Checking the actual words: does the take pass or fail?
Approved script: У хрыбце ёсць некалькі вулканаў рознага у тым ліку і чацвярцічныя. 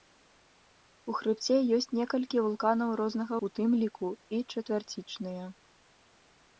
pass